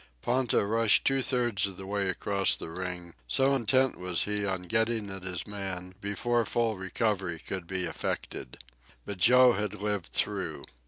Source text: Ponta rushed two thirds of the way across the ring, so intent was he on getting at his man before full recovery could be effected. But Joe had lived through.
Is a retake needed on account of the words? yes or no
no